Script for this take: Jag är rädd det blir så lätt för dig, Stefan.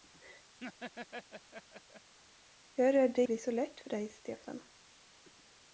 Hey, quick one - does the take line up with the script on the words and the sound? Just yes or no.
no